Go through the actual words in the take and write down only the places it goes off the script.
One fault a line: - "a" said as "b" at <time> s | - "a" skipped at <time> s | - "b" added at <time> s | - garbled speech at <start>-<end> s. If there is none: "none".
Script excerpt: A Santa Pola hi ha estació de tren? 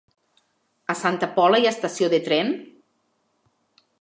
none